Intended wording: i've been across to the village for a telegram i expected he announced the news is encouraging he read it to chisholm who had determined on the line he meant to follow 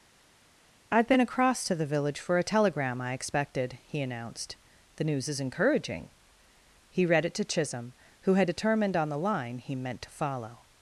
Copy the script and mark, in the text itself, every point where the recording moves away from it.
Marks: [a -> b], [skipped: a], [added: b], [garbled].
i've been across to the village for a telegram i expected he announced the news is encouraging he read it to chisholm who had determined on the line he meant to follow